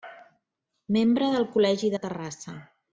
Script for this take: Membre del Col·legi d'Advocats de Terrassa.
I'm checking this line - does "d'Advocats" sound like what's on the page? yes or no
no